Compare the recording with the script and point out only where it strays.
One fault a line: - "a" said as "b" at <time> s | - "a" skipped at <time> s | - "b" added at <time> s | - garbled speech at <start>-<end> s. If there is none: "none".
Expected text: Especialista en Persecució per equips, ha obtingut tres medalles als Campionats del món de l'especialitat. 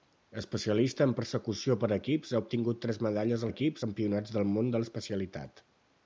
- "als" said as "equips" at 3.5 s